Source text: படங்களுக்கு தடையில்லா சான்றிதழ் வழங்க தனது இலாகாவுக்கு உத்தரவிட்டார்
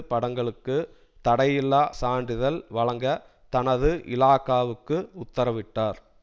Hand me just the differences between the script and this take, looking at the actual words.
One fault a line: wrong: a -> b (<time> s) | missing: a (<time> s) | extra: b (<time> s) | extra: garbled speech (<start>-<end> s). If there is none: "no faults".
no faults